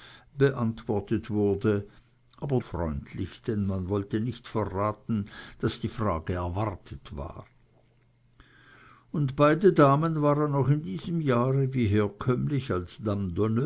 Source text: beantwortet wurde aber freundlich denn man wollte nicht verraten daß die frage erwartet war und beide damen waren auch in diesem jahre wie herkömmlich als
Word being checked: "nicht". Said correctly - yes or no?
yes